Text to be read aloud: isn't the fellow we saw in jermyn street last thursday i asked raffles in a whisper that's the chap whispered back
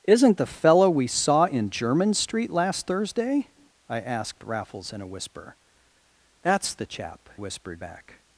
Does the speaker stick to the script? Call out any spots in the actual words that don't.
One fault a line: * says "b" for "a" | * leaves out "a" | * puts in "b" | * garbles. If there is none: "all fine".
all fine